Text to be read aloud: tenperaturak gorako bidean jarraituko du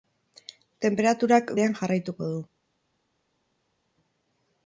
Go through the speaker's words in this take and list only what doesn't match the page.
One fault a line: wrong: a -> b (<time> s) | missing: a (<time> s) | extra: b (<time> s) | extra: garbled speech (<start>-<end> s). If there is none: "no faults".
missing: gorako (1.5 s)